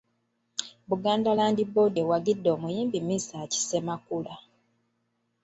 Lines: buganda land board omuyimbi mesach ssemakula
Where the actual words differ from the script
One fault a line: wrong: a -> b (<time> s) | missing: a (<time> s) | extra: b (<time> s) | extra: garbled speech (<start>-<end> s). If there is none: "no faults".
extra: ewagidde (2.0 s)